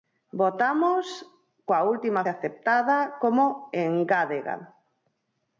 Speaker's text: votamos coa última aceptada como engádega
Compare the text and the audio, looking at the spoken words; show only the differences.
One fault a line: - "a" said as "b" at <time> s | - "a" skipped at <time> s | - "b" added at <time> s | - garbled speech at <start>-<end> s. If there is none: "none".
none